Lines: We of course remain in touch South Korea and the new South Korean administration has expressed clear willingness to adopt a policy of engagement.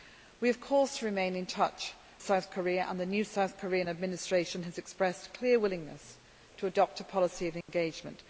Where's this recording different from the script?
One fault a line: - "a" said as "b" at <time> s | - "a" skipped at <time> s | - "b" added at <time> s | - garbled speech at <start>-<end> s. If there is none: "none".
none